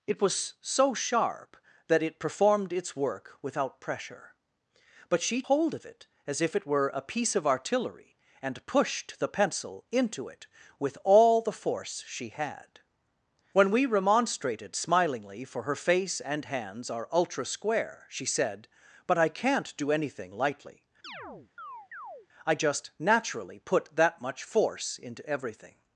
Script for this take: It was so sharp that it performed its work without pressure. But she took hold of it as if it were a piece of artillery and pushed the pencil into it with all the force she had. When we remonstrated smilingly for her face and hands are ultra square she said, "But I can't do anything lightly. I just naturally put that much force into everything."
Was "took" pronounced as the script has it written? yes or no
no